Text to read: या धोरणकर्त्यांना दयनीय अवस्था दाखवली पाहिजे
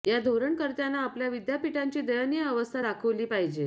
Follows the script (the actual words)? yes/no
no